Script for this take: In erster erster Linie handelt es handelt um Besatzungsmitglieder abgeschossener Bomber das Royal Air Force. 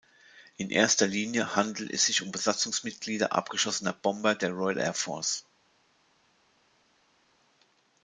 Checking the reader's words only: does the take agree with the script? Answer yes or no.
no